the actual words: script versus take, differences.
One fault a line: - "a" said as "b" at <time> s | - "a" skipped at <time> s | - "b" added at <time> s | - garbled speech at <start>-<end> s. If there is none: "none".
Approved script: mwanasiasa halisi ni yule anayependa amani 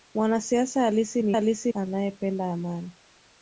- "yule" said as "halisi" at 1.3 s